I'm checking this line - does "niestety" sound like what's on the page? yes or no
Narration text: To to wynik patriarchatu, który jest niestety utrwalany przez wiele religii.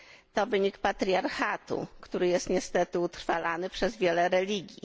yes